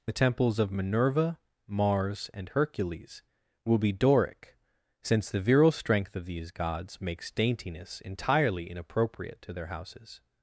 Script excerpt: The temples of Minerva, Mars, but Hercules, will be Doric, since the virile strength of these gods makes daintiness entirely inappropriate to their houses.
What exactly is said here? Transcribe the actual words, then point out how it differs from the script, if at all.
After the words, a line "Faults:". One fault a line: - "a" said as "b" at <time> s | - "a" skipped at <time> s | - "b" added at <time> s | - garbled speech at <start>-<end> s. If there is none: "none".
The temples of Minerva, Mars, and Hercules, will be Doric, since the virile strength of these gods makes daintiness entirely inappropriate to their houses.
Faults:
- "but" said as "and" at 2.3 s